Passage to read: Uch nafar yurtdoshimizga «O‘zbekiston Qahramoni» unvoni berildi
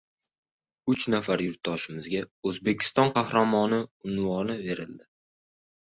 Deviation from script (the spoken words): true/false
false